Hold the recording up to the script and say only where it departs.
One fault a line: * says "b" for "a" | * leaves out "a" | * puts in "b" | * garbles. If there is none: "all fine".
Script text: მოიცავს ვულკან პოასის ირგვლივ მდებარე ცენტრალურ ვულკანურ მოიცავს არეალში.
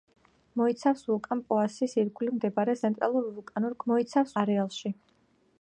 all fine